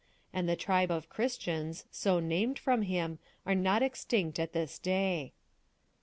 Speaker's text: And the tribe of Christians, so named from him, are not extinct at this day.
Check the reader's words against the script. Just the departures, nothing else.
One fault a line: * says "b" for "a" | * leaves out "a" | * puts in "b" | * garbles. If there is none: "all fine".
all fine